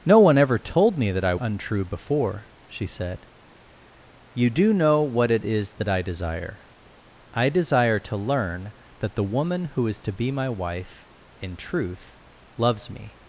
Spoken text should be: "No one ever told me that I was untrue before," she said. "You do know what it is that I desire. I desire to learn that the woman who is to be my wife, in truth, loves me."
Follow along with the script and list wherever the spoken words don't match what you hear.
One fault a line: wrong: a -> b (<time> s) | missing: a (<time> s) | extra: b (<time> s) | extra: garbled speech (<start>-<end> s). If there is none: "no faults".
missing: was (1.4 s)